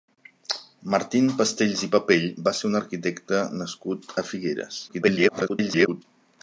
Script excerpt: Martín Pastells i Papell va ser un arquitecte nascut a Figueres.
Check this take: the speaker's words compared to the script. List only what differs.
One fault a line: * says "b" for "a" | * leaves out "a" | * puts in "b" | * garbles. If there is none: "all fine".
* garbles